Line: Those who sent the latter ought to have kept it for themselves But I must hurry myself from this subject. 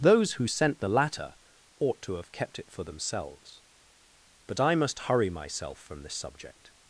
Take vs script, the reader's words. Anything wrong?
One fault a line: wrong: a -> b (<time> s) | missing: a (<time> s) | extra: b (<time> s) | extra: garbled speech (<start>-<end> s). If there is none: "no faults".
no faults